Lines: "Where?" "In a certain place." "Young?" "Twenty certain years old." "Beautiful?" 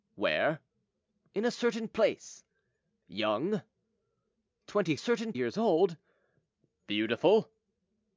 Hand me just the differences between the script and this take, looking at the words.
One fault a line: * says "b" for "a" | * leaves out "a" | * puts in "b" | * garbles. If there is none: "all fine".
all fine